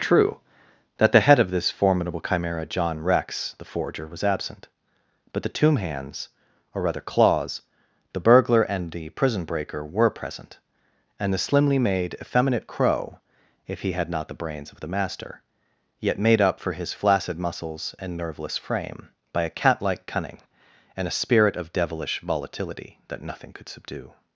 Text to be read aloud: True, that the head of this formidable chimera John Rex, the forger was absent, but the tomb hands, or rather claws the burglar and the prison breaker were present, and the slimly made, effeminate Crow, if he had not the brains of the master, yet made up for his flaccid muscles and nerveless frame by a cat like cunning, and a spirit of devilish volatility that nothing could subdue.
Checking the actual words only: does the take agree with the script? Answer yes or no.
yes